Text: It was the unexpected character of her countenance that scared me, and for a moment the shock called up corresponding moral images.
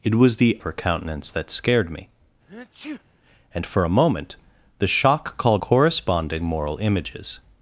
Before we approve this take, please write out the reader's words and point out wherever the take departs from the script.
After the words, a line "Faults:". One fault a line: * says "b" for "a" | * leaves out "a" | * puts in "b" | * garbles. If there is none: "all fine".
It was the her countenance that scared me, and for a moment the shock called corresponding moral images.
Faults:
* leaves out "unexpected character of"
* leaves out "up"